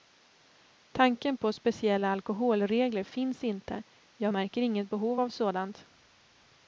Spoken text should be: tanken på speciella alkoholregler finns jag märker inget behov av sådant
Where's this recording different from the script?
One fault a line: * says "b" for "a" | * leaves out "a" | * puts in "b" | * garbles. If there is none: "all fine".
* puts in "inte"